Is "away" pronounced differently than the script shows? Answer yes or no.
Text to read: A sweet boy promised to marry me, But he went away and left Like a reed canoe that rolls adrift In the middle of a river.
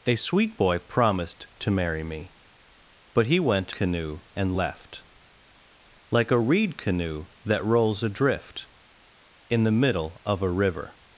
yes